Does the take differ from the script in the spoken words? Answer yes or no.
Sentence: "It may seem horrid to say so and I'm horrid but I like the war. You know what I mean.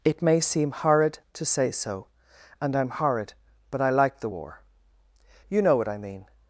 no